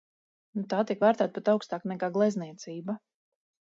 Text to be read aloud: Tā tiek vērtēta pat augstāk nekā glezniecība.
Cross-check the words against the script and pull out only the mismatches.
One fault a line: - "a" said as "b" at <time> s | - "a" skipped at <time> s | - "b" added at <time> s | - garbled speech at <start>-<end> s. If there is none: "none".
none